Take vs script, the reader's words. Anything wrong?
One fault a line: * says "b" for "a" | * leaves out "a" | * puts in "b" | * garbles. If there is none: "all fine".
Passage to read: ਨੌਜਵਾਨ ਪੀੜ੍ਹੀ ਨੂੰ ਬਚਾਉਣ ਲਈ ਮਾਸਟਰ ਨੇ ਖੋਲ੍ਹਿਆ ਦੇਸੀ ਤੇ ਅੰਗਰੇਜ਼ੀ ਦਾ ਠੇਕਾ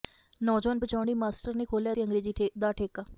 * leaves out "ਪੀੜ੍ਹੀ ਨੂੰ"
* leaves out "ਦੇਸੀ"